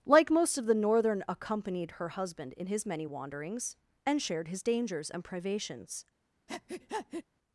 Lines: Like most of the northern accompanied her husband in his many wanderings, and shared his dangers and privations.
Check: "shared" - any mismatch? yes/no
no